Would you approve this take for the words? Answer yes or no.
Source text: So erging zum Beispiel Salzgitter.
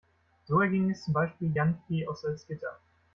no